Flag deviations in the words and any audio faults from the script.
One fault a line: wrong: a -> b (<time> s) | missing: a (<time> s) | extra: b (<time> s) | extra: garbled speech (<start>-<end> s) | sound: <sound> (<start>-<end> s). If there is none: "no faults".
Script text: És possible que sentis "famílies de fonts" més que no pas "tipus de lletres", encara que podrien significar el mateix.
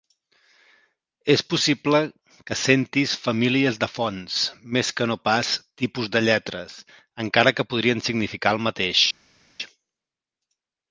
no faults